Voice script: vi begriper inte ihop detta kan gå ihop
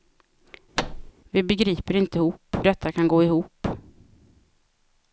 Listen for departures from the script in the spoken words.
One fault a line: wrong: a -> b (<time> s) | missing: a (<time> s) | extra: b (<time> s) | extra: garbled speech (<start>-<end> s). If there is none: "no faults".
no faults